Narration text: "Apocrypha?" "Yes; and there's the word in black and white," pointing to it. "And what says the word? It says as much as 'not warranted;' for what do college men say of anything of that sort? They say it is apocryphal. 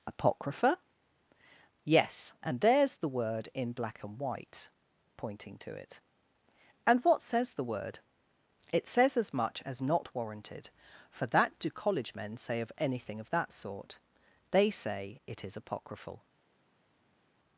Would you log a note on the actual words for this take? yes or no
yes